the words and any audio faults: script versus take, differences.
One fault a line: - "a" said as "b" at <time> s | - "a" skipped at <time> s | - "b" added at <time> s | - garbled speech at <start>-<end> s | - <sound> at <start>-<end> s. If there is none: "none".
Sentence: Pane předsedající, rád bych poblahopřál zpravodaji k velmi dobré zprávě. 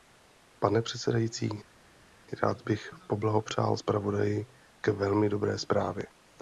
none